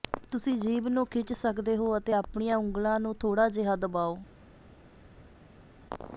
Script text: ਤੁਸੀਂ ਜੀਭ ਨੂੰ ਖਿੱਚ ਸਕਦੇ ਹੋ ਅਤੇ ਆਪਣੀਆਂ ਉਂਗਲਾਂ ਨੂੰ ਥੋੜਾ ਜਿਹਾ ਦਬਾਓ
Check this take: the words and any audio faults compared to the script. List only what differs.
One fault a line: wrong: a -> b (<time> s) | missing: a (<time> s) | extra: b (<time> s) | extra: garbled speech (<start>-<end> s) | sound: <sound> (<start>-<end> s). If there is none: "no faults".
no faults